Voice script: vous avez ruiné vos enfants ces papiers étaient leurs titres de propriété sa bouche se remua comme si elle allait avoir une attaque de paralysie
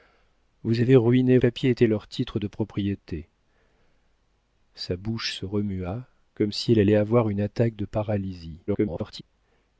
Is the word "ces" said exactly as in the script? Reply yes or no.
no